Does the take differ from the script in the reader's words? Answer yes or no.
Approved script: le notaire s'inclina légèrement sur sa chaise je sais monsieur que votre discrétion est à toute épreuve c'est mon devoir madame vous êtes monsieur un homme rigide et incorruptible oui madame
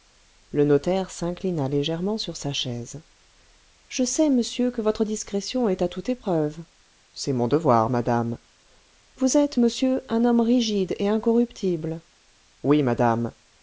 no